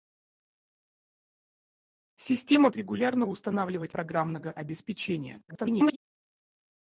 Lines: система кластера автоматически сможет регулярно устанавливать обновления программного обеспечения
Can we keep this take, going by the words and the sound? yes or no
no